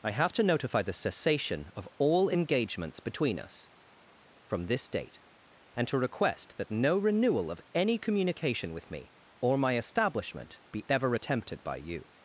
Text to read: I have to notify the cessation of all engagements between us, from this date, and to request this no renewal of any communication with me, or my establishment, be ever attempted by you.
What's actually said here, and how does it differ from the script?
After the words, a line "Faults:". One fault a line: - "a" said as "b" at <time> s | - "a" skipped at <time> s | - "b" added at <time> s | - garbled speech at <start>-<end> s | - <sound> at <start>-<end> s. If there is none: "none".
I have to notify the cessation of all engagements between us, from this date, and to request that no renewal of any communication with me, or my establishment, be ever attempted by you.
Faults:
- "this" said as "that" at 6.6 s